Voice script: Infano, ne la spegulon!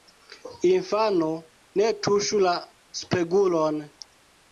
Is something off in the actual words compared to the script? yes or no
yes